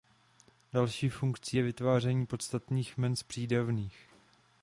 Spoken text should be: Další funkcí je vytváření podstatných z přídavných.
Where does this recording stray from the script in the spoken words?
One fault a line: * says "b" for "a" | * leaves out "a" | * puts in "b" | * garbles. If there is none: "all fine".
* puts in "jmen"